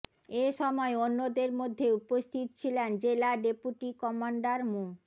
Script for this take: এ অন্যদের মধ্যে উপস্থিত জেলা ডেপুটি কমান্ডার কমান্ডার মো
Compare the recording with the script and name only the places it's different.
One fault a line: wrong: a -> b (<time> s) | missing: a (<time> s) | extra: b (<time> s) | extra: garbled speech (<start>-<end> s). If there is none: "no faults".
extra: সময় (0.6 s)
extra: ছিলেন (2.6 s)
missing: কমান্ডার (4.6 s)